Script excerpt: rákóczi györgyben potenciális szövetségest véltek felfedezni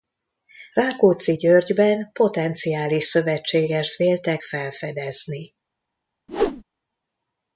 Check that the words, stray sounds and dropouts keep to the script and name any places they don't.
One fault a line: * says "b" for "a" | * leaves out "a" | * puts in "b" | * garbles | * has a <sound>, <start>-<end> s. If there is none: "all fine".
* has a whoosh, 6.3-6.6 s